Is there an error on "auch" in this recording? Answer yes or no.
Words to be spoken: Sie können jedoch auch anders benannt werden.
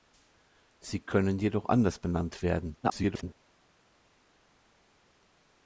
yes